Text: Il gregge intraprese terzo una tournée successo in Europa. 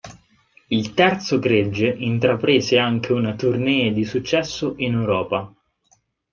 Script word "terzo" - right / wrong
wrong